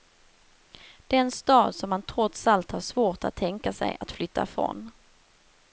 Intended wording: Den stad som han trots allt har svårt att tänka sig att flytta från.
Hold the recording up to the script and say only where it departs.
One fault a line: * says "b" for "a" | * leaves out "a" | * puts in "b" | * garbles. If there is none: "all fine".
all fine